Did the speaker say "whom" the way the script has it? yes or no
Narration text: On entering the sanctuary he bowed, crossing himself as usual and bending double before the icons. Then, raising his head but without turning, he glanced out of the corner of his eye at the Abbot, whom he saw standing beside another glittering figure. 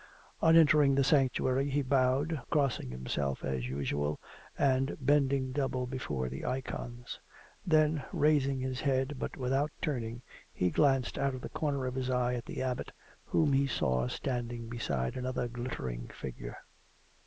yes